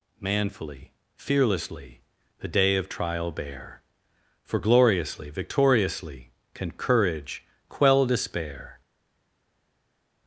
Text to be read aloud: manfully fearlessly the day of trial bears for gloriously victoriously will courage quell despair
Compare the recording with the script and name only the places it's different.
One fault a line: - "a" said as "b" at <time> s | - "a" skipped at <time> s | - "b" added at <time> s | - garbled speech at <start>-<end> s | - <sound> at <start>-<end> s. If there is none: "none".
- "bears" said as "bear" at 3.3 s
- "will" said as "can" at 6.5 s